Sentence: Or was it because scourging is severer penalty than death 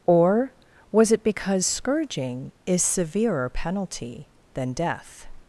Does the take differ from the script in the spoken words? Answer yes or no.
no